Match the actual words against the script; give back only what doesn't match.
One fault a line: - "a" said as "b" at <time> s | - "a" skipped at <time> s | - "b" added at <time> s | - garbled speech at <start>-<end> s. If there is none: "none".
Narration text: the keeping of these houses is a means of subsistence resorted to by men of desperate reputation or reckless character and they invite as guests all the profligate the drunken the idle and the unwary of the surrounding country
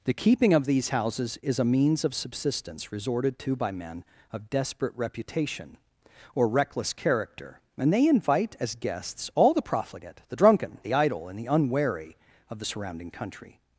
none